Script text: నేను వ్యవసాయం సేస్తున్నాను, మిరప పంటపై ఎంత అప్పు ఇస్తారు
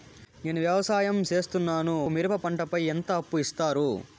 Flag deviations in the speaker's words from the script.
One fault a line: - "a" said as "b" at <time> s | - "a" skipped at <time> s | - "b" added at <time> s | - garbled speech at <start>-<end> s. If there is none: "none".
none